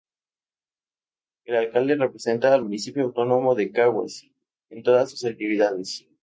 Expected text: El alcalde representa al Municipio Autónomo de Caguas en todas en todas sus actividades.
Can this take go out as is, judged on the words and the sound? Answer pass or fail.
fail